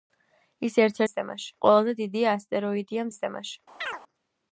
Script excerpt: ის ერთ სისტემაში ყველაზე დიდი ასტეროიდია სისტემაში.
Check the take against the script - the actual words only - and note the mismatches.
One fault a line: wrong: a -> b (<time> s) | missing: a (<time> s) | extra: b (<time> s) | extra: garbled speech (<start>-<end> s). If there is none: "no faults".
no faults